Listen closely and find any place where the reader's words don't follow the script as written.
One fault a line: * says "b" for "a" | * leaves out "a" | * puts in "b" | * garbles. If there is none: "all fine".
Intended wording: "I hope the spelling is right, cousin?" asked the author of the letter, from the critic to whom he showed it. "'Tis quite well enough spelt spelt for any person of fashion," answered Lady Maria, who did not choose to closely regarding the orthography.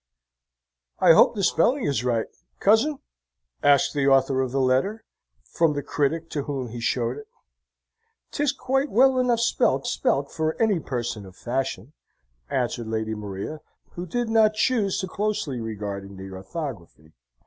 all fine